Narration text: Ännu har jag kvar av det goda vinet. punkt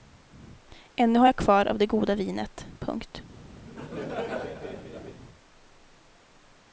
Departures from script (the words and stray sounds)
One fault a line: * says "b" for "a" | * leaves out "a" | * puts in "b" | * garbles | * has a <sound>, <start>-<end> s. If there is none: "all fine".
* has a laugh, 3.6-5.2 s